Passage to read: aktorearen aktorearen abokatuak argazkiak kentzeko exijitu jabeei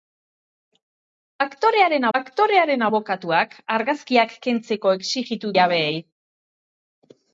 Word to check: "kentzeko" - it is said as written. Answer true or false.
true